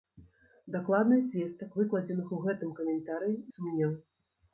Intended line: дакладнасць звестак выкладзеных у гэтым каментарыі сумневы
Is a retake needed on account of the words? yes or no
no